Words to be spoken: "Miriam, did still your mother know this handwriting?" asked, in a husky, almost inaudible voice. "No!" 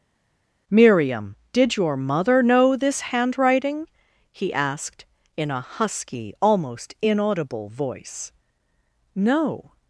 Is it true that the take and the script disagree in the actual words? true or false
true